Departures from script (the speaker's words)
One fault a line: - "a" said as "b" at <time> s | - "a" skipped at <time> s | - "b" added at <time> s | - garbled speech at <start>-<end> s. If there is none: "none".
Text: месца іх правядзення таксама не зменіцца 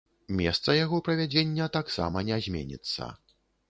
- "іх" said as "яго" at 0.8 s